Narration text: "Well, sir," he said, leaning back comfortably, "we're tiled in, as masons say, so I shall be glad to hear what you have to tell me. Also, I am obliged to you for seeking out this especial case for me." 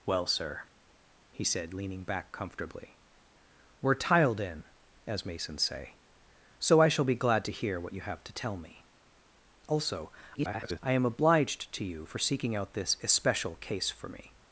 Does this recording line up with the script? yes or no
no